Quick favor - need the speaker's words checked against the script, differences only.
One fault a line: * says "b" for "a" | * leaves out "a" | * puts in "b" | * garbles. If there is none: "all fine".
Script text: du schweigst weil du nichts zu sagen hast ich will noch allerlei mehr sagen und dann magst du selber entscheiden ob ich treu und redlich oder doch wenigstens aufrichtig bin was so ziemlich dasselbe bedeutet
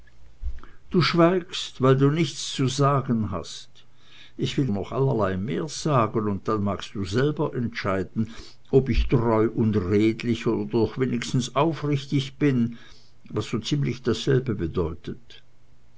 all fine